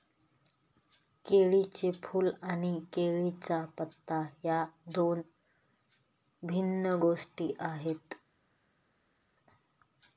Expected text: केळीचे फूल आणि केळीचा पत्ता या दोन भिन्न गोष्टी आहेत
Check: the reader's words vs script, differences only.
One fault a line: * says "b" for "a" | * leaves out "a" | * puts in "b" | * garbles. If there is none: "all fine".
all fine